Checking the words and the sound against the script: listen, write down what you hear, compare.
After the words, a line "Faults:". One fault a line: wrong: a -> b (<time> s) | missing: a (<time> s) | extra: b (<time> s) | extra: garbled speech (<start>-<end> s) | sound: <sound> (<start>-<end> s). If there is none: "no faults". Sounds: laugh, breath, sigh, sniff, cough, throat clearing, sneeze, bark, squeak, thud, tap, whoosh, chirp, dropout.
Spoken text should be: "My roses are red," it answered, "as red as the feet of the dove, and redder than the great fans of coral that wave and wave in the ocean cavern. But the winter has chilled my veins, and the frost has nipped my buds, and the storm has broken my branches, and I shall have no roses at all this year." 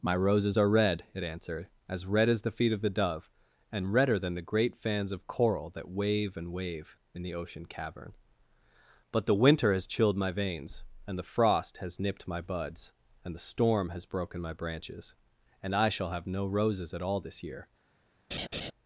"My roses are red," it answered, "as red as the feet of the dove, and redder than the great fans of coral that wave and wave in the ocean cavern. But the winter has chilled my veins, and the frost has nipped my buds, and the storm has broken my branches, and I shall have no roses at all this year."
Faults:
sound: laugh (18.3-18.7 s)